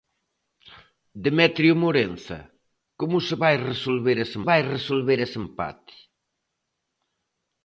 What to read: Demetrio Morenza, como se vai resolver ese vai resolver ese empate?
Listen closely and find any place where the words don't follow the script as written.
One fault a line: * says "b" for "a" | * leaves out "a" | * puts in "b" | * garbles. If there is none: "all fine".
all fine